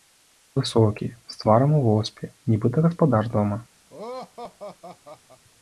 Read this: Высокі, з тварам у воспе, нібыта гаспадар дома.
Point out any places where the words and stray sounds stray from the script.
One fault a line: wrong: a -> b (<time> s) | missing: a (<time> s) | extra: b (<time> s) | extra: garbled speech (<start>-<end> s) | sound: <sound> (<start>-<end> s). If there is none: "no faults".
sound: laugh (3.9-5.4 s)